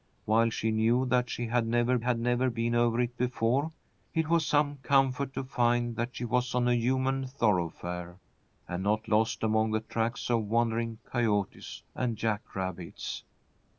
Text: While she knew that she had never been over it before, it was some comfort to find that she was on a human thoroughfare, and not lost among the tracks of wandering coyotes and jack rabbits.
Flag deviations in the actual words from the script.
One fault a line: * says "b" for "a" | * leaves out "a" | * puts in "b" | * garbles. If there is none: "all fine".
* puts in "had never"